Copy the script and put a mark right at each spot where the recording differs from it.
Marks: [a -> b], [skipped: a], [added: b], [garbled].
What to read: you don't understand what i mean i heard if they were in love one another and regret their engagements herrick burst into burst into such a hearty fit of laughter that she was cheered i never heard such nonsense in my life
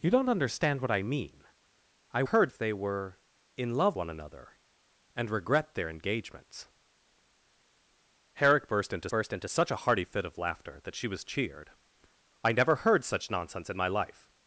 you don't understand what i mean i heard if they were in love one another and regret their engagements herrick burst into burst into such a hearty fit of laughter that she was cheered i never heard such nonsense in my life